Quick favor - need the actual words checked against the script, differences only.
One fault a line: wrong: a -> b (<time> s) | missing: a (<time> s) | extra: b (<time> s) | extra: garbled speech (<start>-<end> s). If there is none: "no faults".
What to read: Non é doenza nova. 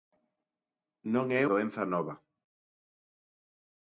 no faults